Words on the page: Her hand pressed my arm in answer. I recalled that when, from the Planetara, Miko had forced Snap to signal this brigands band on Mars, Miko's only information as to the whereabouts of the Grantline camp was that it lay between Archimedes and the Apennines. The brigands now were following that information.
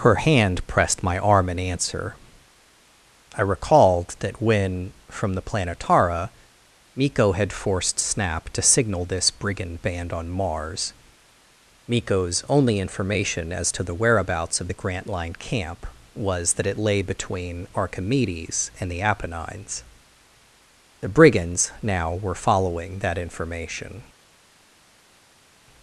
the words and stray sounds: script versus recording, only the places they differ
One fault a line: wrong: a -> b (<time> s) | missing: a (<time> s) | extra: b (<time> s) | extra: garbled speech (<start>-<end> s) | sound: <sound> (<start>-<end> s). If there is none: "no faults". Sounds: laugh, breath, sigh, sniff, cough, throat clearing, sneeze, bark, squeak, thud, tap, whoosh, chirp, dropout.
wrong: brigands -> brigand (9.3 s)